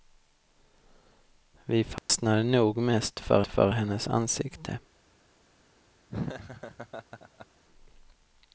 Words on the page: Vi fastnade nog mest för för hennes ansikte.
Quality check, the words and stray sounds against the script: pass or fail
fail